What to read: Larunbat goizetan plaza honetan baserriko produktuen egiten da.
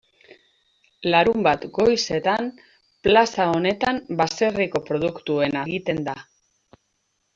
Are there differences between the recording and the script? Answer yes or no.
no